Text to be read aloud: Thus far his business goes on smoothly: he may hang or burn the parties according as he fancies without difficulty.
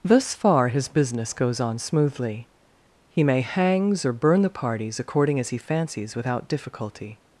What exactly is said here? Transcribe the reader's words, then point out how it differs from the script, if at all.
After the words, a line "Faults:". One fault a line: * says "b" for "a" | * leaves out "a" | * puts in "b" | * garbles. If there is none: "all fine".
Thus far his business goes on smoothly: he may hangs or burn the parties according as he fancies without difficulty.
Faults:
* says "hangs" for "hang"